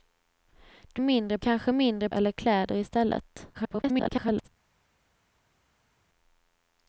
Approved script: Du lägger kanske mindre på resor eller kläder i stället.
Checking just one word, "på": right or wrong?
wrong